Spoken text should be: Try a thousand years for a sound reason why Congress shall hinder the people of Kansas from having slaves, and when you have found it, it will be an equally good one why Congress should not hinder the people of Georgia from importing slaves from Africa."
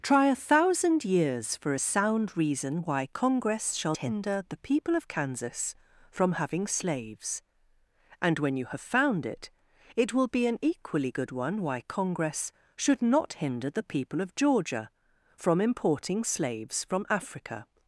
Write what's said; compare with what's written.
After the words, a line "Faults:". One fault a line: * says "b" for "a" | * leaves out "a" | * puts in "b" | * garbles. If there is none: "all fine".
Try a thousand years for a sound reason why Congress shall hinder the people of Kansas from having slaves, and when you have found it, it will be an equally good one why Congress should not hinder the people of Georgia from importing slaves from Africa."
Faults:
all fine